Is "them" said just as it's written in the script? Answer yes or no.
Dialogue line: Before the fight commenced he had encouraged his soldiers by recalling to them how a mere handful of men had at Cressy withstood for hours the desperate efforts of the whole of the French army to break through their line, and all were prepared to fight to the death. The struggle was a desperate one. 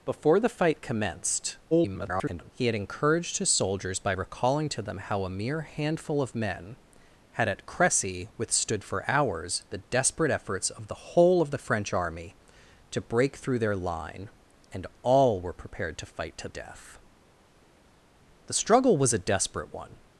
yes